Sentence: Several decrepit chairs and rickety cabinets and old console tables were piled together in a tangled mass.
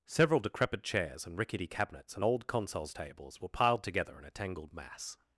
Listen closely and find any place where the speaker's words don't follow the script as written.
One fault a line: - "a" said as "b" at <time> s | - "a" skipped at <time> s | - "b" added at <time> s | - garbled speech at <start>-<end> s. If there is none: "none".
- "console" said as "consoles" at 2.5 s